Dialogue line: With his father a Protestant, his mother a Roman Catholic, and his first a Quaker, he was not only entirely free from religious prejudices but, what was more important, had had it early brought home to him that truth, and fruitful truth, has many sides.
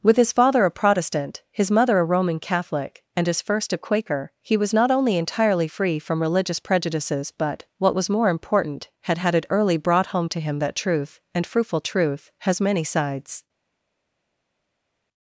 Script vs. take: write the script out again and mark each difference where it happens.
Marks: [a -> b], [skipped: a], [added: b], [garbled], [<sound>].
With his father a Protestant, his mother a Roman Catholic, and his first a Quaker, he was not only entirely free from religious prejudices but, what was more important, had had it early brought home to him that truth, and fruitful truth, has many sides.